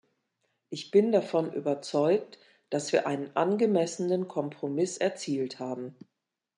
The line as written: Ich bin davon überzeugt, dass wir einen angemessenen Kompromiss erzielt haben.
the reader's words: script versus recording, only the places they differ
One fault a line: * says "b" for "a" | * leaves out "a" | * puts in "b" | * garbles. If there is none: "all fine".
all fine